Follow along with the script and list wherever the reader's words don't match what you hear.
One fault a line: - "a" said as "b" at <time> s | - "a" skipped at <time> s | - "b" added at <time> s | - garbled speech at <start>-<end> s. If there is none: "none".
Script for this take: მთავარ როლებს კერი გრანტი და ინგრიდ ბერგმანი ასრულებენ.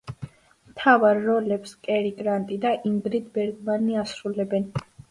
none